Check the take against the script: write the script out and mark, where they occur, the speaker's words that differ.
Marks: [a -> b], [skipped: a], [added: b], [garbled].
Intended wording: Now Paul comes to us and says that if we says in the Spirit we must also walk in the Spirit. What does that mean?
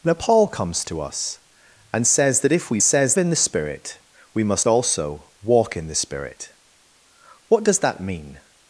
Now Paul comes to us and says that if we says in the Spirit we must also walk in the Spirit. What does that mean?